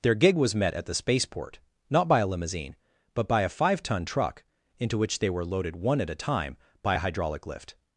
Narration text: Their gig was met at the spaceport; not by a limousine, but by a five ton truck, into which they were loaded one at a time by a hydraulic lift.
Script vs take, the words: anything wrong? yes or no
no